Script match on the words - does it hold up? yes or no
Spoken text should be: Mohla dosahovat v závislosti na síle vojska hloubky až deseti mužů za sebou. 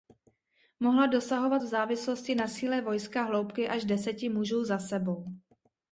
yes